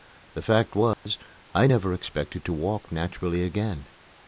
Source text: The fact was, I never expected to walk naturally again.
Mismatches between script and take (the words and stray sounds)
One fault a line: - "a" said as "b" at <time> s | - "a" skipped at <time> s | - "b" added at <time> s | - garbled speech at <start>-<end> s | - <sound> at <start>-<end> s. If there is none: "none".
- dropout at 0.9-1.1 s